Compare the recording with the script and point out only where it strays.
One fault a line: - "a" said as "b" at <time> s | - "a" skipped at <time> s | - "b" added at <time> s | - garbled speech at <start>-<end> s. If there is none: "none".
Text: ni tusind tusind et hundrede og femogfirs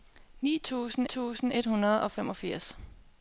none